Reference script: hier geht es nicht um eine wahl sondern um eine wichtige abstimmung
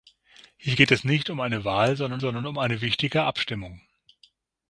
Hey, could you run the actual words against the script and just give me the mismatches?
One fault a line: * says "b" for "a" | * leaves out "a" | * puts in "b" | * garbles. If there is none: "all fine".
* puts in "sondern"